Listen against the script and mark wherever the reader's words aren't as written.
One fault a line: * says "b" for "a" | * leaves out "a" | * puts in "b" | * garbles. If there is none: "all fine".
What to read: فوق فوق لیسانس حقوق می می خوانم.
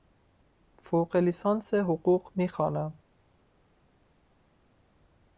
* leaves out "فوق"
* leaves out "می"